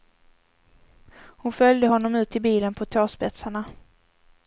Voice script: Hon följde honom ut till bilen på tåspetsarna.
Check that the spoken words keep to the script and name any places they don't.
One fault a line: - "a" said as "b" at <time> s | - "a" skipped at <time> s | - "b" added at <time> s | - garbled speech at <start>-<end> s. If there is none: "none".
none